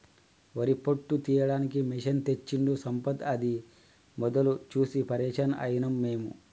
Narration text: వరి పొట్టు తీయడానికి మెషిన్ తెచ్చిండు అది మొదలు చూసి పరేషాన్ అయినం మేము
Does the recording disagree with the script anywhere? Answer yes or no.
yes